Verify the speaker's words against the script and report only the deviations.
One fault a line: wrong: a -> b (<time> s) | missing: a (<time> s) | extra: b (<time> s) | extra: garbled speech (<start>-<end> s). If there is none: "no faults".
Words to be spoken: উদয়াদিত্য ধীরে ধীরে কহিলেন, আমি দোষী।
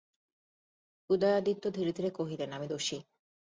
no faults